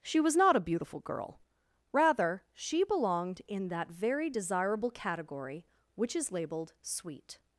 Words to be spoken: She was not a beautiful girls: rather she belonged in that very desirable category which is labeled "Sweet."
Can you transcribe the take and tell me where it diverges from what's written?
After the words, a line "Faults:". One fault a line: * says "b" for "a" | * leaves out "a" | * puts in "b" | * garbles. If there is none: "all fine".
She was not a beautiful girl: rather she belonged in that very desirable category which is labeled "Sweet."
Faults:
* says "girl" for "girls"